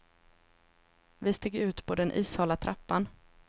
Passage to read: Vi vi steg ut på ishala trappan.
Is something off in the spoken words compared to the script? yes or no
yes